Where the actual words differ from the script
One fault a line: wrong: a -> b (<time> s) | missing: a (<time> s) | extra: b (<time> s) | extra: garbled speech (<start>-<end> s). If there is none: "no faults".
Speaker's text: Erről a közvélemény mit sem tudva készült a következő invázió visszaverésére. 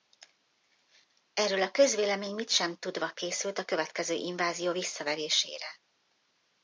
no faults